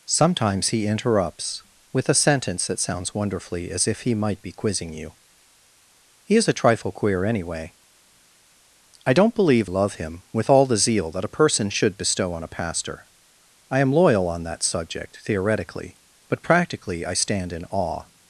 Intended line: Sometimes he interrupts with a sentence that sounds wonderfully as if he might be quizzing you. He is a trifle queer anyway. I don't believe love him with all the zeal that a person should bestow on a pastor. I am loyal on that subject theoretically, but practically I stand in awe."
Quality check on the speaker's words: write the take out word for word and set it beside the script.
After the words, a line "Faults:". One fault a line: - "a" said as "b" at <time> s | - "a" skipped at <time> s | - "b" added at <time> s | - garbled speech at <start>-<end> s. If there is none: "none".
Sometimes he interrupts with a sentence that sounds wonderfully as if he might be quizzing you. He is a trifle queer anyway. I don't believe love him with all the zeal that a person should bestow on a pastor. I am loyal on that subject theoretically, but practically I stand in awe."
Faults:
none